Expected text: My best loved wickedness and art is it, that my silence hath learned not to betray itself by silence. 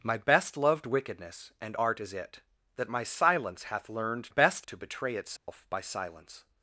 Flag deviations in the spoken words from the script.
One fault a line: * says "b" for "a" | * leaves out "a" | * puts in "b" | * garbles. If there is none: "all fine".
* says "best" for "not"